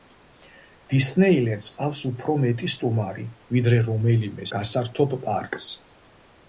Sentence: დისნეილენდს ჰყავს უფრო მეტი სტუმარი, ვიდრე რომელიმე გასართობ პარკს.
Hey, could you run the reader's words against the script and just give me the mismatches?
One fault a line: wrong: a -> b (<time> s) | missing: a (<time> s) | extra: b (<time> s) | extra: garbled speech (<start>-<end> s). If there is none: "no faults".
no faults